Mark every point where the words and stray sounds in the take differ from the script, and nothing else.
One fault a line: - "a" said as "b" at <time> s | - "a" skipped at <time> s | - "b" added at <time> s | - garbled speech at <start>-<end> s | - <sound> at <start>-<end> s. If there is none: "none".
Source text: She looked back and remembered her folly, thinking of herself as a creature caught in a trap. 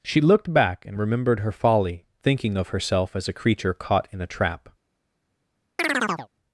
- chirp at 5.8-6.3 s